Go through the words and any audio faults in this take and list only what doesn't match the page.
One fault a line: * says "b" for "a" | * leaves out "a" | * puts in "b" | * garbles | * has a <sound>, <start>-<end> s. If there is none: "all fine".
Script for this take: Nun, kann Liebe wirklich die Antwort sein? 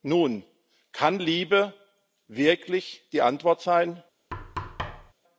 * has a thud, 4.3-5.1 s